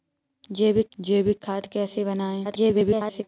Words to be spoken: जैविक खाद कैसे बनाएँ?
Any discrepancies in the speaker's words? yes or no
yes